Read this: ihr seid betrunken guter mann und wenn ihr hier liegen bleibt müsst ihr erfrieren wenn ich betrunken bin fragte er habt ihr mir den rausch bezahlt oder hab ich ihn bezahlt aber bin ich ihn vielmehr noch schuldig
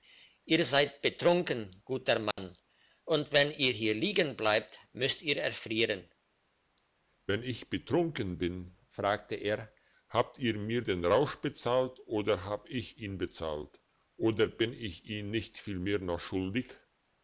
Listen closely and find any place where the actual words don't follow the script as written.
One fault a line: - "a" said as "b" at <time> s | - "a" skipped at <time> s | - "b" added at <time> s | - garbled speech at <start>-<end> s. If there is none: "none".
- "aber" said as "oder" at 14.2 s
- "nicht" added at 15.3 s